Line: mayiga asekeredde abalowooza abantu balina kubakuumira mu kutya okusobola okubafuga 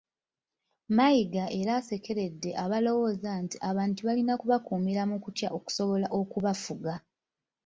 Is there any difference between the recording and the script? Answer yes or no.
yes